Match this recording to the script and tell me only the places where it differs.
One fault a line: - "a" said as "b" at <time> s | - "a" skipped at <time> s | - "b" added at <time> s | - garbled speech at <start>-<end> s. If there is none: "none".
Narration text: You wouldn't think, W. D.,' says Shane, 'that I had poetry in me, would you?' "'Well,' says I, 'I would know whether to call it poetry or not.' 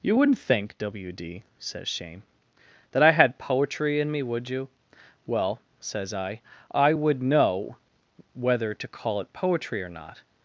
none